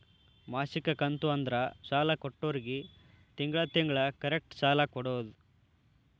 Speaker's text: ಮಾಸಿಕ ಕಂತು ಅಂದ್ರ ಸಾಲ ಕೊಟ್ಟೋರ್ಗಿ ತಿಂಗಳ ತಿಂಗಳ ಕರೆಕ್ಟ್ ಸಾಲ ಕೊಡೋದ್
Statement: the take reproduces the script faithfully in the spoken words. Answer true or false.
true